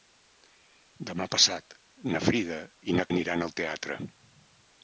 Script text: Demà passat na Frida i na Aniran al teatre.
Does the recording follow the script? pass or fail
pass